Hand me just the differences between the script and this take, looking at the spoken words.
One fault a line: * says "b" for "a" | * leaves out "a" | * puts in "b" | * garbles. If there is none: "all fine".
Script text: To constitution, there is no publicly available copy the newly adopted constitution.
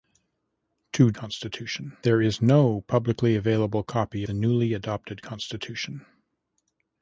all fine